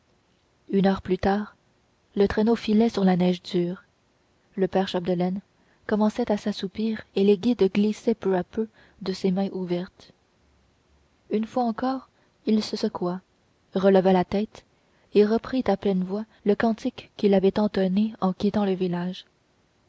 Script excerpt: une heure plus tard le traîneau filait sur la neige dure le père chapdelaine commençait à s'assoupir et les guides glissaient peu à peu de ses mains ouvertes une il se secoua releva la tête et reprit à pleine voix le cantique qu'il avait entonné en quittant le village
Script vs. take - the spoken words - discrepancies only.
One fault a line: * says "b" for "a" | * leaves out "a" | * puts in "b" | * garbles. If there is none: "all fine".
* puts in "fois encore"